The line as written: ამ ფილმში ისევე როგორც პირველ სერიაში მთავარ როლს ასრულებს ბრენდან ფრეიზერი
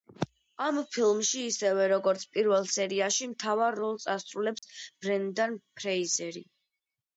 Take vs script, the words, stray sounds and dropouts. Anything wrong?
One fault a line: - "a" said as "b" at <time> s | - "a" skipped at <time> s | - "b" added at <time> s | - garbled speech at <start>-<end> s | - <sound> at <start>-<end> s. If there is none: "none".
- dropout at 4.6-4.6 s